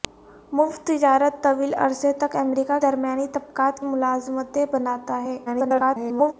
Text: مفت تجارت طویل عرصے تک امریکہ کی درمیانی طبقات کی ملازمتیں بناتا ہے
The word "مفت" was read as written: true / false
true